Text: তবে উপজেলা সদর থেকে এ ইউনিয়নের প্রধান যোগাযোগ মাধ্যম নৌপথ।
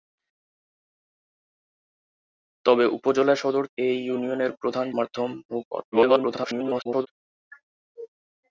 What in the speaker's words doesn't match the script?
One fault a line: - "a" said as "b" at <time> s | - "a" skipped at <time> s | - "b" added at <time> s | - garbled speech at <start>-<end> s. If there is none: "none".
- "থেকে" skipped at 3.6 s
- "যোগাযোগ" skipped at 4.9 s
- garbled speech at 5.9-7.1 s